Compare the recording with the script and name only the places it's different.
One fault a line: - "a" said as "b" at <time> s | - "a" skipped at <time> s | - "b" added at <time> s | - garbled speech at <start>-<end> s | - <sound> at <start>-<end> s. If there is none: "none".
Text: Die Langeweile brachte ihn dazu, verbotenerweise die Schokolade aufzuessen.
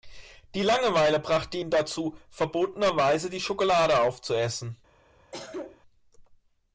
- cough at 5.3-5.8 s